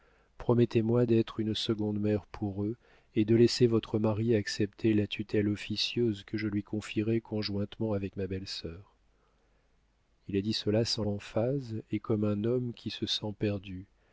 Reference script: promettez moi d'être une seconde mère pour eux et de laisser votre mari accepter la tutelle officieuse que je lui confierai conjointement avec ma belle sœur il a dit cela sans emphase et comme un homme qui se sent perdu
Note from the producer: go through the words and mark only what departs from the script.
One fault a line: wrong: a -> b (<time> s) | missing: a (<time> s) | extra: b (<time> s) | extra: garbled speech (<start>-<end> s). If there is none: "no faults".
no faults